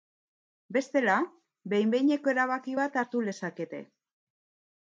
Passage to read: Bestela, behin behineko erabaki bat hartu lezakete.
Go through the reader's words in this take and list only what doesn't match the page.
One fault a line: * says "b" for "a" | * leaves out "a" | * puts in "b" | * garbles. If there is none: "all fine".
all fine